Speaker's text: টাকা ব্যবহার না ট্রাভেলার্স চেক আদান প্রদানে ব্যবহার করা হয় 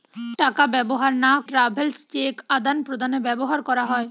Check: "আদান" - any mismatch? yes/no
no